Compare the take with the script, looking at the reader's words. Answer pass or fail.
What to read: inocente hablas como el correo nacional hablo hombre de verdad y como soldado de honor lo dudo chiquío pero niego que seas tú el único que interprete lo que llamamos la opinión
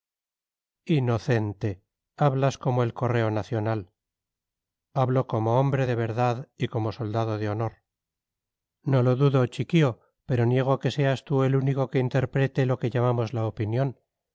fail